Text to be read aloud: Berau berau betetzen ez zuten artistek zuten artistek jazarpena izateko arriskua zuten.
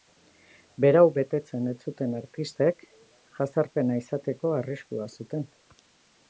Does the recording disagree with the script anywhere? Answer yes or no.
yes